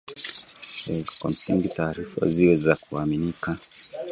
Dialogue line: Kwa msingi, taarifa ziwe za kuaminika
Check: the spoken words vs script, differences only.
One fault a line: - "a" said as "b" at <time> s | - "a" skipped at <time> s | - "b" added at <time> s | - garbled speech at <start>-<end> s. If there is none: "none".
none